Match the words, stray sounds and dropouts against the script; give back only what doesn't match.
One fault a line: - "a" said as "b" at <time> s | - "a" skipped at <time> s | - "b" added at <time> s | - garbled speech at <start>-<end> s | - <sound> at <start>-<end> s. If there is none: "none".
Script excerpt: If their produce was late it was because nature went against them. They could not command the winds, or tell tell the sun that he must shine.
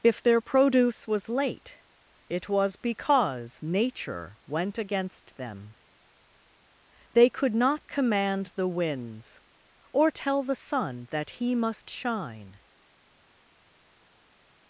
- "tell" skipped at 10.4 s